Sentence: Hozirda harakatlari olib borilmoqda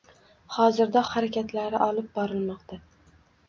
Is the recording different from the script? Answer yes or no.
no